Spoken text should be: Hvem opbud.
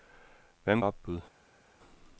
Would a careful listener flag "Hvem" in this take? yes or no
no